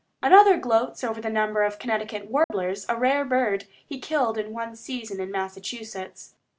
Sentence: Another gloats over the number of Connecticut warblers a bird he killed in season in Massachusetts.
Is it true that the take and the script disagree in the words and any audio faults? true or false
true